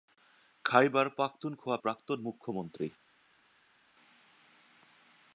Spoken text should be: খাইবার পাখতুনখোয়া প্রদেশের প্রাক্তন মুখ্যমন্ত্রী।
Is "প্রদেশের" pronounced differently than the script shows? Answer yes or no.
yes